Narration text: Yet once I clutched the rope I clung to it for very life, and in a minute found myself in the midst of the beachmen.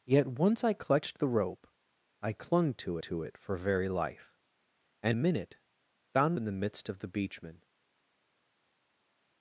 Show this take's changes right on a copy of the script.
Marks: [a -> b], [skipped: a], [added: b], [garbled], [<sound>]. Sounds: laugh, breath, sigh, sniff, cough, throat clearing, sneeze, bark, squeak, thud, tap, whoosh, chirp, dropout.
Yet once I clutched the rope I clung to [added: to] it for very life, and [skipped: in] a minute found [skipped: myself] in the midst of the beachmen.